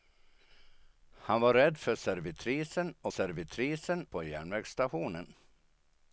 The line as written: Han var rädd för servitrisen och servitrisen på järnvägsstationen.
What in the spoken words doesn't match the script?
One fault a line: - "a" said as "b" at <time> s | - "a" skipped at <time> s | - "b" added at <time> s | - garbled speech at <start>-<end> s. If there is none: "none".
none